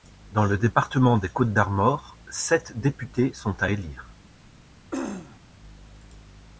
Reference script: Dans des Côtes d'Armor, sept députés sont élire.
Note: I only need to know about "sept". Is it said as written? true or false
true